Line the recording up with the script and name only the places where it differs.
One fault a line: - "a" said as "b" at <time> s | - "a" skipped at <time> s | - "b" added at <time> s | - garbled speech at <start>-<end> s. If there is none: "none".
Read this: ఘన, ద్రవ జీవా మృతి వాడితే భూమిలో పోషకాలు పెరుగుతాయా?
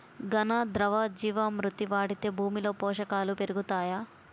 none